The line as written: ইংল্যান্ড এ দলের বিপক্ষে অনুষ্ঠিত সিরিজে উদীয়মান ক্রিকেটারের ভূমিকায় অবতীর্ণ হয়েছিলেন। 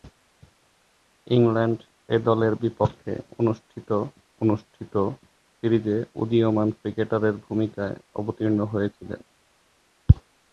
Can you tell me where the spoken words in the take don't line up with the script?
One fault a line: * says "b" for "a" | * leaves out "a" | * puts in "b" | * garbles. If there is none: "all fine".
* puts in "অনুষ্ঠিত"